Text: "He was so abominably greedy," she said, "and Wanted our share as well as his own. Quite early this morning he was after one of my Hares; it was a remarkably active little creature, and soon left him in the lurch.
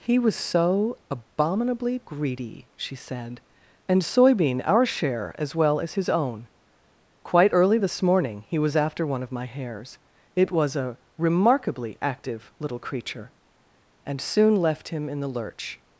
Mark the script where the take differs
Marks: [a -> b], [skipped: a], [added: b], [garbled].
"He was so abominably greedy," she said, "and [Wanted -> Soybean] our share as well as his own. Quite early this morning he was after one of my Hares; it was a remarkably active little creature, and soon left him in the lurch.